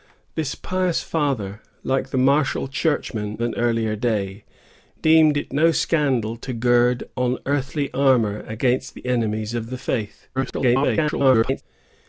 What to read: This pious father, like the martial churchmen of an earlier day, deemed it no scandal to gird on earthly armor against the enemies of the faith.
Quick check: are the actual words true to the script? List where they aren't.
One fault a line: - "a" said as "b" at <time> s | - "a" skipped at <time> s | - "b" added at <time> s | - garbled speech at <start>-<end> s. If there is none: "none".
- "of" skipped at 3.4 s
- garbled speech at 10.4-11.6 s